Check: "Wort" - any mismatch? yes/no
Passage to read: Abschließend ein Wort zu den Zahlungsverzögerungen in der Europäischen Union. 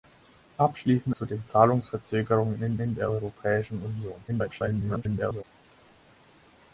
yes